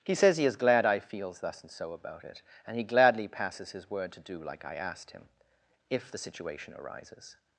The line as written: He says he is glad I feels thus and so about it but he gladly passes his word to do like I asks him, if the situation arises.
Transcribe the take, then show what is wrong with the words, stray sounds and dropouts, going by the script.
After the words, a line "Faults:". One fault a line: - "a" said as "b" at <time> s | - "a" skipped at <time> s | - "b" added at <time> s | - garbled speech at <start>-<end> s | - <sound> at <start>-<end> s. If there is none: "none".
He says he is glad I feels thus and so about it and he gladly passes his word to do like I asked him, if the situation arises.
Faults:
- "but" said as "and" at 2.7 s
- "asks" said as "asked" at 4.8 s